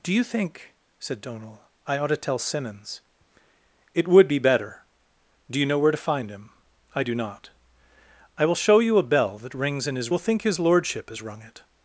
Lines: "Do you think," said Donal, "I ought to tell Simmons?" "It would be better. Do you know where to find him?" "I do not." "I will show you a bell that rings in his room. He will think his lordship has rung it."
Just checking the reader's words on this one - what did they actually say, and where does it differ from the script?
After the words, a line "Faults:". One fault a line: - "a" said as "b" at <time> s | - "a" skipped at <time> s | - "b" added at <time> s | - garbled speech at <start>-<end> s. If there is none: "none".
"Do you think," said Donal, "I ought to tell Simmons?" "It would be better. Do you know where to find him?" "I do not." "I will show you a bell that rings in his will think his lordship has rung it."
Faults:
- "room He" skipped at 10.1 s